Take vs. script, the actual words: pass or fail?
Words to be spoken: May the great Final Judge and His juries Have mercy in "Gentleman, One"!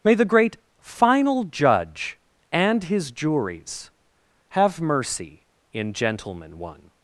pass